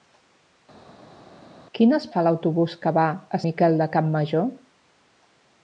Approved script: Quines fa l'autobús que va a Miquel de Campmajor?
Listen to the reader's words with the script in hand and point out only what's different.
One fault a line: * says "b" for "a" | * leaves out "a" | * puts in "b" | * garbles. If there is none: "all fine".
all fine